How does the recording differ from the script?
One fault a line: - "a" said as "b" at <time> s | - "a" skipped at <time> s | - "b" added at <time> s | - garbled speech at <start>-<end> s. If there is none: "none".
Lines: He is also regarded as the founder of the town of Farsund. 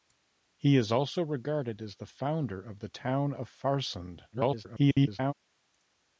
- garbled speech at 4.3-5.3 s